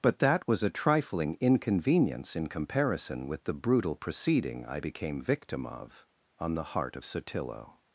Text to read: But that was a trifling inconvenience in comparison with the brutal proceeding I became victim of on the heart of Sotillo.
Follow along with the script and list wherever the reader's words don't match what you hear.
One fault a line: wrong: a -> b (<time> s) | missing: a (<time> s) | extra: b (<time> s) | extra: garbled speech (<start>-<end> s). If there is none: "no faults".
no faults